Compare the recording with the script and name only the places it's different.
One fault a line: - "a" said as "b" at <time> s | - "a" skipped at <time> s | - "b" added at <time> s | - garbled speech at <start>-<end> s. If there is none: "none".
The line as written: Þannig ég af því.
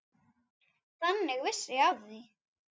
- "vissi" added at 1.4 s